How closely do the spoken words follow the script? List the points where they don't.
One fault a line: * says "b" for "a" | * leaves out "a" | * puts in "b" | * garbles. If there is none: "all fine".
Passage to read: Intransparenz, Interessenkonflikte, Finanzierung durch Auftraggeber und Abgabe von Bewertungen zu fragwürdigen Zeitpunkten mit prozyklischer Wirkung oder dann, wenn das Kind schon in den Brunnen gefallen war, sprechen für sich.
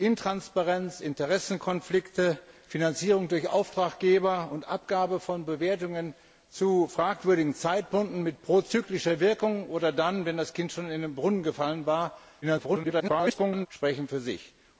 * garbles